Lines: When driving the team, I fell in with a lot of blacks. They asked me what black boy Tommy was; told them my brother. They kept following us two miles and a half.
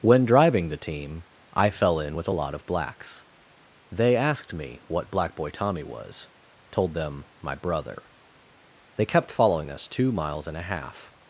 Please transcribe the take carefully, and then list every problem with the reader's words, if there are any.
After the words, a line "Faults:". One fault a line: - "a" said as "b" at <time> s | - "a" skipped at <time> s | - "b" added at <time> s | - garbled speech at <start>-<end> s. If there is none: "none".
When driving the team, I fell in with a lot of blacks. They asked me what black boy Tommy was; told them my brother. They kept following us two miles and a half.
Faults:
none